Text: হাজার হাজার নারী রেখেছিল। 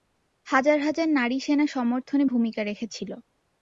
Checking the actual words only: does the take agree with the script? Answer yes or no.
no